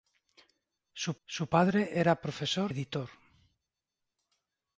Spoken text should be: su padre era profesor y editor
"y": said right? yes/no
no